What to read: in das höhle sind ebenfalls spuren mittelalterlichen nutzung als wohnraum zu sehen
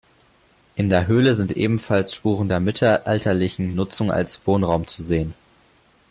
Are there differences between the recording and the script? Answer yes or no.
yes